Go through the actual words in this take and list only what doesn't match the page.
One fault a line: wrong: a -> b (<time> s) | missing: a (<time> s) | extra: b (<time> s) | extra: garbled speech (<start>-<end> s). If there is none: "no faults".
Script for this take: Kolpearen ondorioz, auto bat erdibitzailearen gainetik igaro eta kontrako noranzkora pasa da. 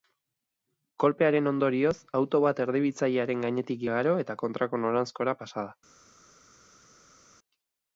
no faults